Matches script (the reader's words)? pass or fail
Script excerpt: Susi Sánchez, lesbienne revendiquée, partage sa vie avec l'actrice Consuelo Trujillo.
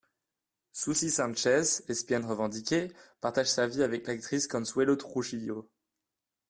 pass